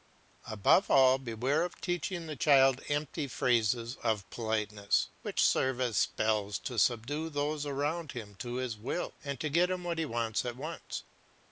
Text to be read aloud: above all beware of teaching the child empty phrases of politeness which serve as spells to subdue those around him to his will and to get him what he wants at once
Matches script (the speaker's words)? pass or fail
pass